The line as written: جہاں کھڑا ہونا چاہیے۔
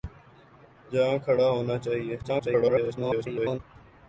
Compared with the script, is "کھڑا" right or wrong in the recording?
right